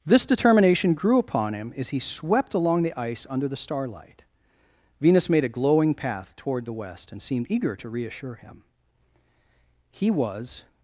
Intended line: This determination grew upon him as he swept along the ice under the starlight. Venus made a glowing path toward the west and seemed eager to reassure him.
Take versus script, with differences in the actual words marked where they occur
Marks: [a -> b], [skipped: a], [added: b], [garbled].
This determination grew upon him as he swept along the ice under the starlight. Venus made a glowing path toward the west and seemed eager to reassure him. [added: He was]